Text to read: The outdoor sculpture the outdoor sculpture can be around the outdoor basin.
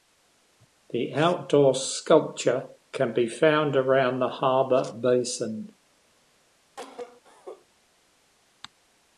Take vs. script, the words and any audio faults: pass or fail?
fail